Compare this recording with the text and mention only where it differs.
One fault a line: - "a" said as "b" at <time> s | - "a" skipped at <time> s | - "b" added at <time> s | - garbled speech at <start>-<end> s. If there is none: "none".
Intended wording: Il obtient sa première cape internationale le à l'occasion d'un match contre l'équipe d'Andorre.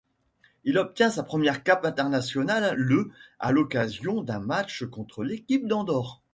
none